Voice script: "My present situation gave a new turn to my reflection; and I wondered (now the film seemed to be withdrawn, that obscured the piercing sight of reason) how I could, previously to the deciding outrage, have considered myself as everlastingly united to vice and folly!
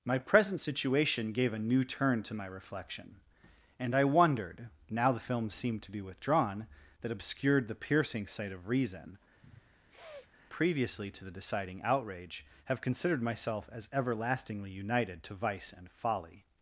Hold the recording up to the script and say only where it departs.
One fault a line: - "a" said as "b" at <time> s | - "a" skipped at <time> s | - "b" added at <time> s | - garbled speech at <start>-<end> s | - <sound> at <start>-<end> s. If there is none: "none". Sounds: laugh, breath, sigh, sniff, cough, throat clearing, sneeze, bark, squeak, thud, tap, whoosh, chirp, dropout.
- "how I could" skipped at 9.2 s
- sniff at 9.4-10.3 s